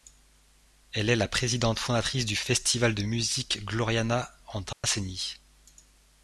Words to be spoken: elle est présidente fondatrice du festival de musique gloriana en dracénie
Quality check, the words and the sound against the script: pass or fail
fail